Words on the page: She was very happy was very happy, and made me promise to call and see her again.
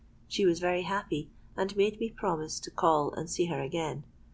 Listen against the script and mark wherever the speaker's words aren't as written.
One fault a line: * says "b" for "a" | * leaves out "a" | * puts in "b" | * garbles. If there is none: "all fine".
* leaves out "was very happy"